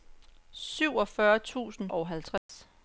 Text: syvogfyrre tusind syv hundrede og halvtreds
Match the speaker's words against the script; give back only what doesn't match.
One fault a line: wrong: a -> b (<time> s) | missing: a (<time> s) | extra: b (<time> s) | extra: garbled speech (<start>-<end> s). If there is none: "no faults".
missing: syv hundrede (1.9 s)